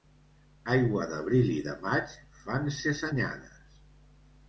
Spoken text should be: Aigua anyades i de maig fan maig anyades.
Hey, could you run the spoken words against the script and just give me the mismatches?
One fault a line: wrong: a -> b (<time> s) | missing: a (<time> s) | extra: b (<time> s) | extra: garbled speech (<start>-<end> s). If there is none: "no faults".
wrong: anyades -> d'abril (1.1 s)
wrong: maig -> ses (2.8 s)